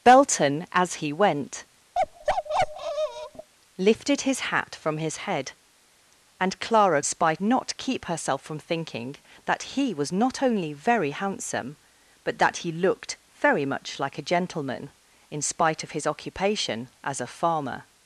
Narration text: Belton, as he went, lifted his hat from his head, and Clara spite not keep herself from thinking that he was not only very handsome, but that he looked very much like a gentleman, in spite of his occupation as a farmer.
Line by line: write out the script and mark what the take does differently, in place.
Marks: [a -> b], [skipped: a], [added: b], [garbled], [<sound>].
Belton, as he went, [bark] lifted his hat from his head, and Clara spite not keep herself from thinking that he was not only very handsome, but that he looked very much like a gentleman, in spite of his occupation as a farmer.